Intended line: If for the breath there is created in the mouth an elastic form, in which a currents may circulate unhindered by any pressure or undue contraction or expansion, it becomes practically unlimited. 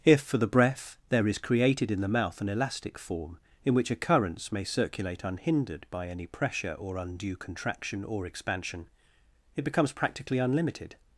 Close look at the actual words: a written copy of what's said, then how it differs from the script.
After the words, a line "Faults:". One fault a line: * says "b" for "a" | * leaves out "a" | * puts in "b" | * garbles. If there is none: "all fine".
If for the breath there is created in the mouth an elastic form, in which a currents may circulate unhindered by any pressure or undue contraction or expansion, it becomes practically unlimited.
Faults:
all fine